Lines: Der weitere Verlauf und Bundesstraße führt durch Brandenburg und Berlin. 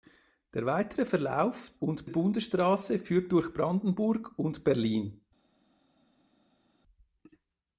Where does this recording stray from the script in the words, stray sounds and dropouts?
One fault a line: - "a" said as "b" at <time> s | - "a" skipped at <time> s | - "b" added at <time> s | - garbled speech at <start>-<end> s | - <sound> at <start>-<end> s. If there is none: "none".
none